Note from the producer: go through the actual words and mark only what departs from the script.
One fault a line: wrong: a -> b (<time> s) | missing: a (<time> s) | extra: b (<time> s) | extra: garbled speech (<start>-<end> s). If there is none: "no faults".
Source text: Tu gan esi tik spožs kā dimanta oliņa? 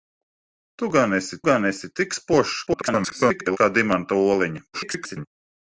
extra: gan esi (1.5 s)
extra: garbled speech (2.7-3.6 s)
extra: garbled speech (4.7-5.3 s)